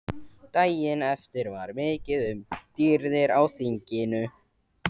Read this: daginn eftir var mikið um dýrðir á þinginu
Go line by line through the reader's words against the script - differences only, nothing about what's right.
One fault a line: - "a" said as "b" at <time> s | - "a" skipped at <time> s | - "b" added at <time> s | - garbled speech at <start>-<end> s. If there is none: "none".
none